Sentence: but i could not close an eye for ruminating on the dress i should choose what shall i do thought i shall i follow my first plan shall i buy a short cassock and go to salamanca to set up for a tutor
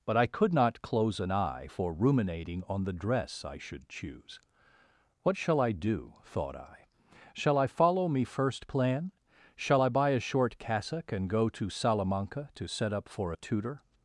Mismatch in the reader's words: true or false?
true